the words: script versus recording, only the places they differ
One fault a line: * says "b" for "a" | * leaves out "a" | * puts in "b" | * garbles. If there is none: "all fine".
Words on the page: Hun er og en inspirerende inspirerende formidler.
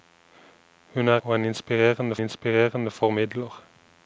all fine